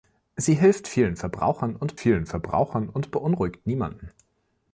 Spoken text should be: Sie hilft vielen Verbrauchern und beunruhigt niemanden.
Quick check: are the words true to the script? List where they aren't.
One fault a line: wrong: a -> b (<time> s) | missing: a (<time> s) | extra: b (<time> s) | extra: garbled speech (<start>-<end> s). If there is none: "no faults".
extra: vielen Verbrauchern und (2.0 s)